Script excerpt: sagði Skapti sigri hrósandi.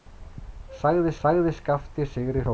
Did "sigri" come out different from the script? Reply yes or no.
no